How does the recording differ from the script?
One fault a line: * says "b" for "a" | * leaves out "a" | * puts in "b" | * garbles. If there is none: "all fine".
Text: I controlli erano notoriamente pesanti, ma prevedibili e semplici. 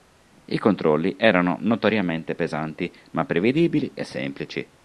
all fine